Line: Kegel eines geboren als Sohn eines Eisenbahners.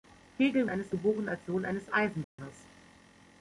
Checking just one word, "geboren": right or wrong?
right